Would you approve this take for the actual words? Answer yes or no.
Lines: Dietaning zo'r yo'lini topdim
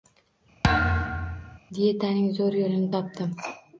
yes